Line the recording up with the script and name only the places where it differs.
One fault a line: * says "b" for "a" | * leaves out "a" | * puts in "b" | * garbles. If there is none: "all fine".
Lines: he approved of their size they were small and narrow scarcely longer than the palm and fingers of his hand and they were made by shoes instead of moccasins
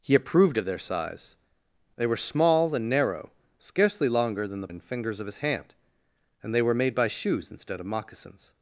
* leaves out "palm"